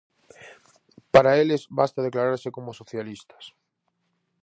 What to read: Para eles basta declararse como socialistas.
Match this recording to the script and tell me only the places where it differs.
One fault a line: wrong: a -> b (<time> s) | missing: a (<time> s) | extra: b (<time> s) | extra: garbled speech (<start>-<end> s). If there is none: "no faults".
no faults